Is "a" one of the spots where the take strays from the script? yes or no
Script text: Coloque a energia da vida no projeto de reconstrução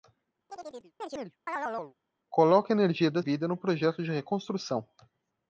no